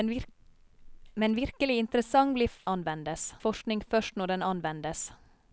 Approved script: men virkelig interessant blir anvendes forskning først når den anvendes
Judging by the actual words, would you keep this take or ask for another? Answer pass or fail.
pass